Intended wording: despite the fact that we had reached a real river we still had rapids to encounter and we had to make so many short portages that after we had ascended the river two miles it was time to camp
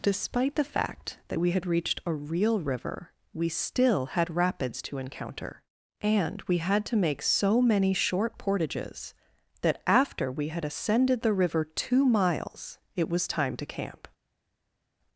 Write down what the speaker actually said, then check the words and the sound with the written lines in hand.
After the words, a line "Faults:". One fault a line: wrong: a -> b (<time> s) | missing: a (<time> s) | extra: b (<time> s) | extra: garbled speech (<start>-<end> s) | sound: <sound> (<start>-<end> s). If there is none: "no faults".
despite the fact that we had reached a real river we still had rapids to encounter and we had to make so many short portages that after we had ascended the river two miles it was time to camp
Faults:
no faults